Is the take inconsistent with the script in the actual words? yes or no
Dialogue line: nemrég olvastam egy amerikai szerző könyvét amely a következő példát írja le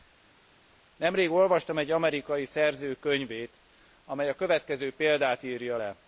no